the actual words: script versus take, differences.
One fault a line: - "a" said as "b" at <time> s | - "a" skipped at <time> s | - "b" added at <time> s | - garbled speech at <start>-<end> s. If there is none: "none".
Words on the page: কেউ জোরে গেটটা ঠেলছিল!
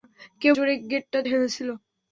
none